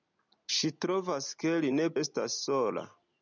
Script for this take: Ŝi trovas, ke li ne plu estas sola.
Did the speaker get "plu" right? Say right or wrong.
wrong